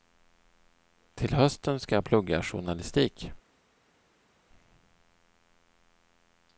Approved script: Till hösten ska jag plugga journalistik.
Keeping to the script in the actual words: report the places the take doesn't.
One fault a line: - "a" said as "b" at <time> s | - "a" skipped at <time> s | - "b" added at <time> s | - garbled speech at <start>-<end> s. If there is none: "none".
none